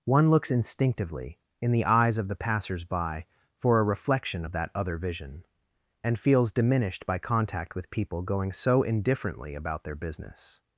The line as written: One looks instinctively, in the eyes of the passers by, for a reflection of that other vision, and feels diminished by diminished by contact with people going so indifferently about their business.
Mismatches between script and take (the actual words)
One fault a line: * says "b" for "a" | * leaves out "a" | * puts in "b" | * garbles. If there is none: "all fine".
* leaves out "diminished by"